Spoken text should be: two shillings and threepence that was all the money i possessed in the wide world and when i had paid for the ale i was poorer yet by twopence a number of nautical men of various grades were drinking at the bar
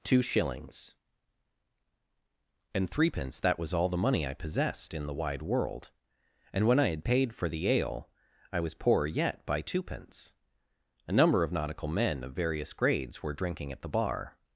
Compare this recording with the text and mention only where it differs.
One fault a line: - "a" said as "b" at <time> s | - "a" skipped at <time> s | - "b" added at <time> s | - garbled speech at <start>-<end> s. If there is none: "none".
none